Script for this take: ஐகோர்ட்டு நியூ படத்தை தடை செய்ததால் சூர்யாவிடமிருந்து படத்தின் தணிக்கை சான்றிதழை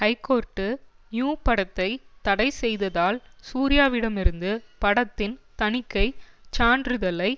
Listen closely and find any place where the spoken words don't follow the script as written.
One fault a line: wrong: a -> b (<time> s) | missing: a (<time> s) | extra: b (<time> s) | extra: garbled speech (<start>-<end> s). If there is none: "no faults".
no faults